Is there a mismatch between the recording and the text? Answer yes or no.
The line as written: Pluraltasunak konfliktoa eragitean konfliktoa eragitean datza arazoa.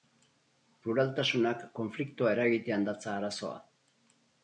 yes